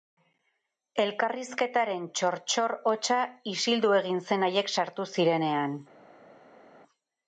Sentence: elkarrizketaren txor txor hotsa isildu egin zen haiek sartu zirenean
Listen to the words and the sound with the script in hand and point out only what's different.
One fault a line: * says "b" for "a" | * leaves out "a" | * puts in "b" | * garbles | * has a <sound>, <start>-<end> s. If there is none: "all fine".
all fine